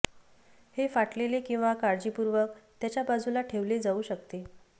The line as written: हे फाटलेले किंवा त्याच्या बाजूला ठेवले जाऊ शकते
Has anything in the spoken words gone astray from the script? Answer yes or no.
yes